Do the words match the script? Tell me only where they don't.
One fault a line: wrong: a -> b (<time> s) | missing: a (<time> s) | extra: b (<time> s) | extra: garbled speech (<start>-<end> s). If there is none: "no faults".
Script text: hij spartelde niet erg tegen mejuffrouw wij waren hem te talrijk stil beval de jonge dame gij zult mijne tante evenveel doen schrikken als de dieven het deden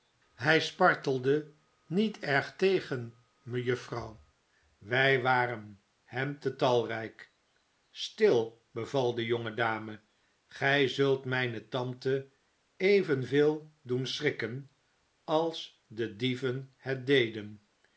no faults